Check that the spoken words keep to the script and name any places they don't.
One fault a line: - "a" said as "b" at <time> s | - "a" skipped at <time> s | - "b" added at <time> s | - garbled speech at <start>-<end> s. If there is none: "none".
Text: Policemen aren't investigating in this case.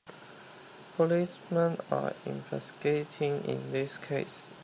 - "aren't" said as "are" at 1.9 s